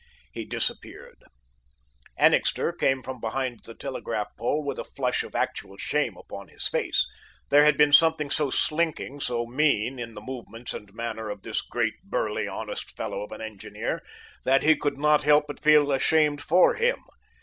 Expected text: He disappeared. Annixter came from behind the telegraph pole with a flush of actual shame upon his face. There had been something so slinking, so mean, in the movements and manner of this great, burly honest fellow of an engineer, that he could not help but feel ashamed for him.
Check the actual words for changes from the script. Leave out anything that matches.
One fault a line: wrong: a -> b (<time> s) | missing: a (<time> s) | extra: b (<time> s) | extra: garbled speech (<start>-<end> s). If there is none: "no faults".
no faults